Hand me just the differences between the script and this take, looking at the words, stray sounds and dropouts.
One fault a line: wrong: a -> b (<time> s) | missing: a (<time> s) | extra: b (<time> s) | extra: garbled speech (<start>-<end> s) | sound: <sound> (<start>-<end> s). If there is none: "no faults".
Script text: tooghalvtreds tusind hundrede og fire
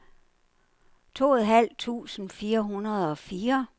extra: fire (2.3 s)